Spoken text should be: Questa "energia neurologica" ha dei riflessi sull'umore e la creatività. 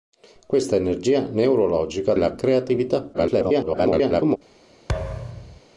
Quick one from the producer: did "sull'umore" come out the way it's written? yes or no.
no